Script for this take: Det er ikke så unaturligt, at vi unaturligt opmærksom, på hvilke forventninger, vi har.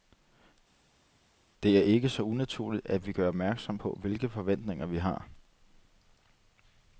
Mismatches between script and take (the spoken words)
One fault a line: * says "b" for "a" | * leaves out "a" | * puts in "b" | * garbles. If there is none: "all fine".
* says "gør" for "unaturligt"